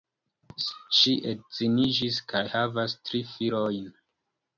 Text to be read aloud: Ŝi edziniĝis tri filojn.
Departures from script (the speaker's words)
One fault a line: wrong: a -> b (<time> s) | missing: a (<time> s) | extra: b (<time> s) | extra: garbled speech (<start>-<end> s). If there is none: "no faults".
extra: kaj havas (2.3 s)